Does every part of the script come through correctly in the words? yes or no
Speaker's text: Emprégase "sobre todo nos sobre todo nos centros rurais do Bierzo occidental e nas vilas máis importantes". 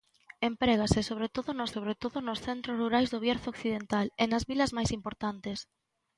yes